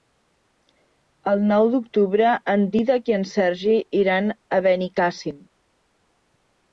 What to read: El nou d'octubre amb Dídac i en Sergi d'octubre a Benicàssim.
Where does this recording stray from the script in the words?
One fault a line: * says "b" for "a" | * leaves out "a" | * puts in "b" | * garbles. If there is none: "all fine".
* says "en" for "amb"
* says "iran" for "d'octubre"